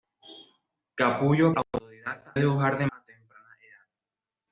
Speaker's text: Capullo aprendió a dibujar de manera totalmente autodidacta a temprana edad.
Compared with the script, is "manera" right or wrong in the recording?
wrong